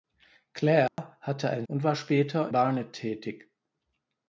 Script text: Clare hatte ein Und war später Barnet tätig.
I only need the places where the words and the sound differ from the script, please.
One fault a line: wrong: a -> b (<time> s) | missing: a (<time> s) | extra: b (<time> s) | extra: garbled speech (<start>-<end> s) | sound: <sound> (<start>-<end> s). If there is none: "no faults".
sound: dropout (0.9-1.0 s)